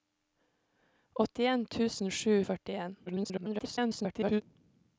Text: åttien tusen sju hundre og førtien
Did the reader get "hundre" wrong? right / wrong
wrong